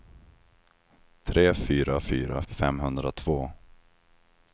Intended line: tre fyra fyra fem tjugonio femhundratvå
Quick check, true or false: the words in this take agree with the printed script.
false